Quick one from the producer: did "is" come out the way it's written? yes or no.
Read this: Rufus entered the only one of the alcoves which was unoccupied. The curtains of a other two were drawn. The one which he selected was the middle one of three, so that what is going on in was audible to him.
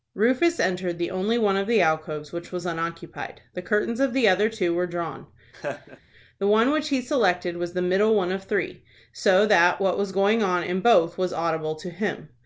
no